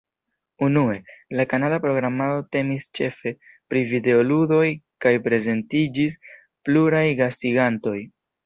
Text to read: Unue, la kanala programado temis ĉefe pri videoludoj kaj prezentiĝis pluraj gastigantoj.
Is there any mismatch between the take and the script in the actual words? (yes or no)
no